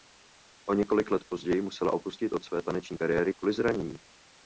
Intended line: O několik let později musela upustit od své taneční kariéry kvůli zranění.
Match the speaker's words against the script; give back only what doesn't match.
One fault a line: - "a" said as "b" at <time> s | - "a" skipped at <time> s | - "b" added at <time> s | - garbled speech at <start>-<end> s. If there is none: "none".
none